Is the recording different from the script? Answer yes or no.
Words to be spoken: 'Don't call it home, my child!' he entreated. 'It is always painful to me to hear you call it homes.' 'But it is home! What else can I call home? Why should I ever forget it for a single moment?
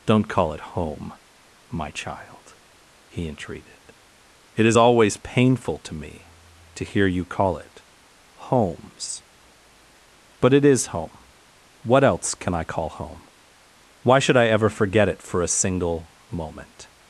no